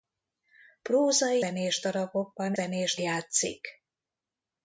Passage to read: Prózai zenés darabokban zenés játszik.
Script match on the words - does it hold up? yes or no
yes